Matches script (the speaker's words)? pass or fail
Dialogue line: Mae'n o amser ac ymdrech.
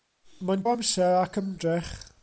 pass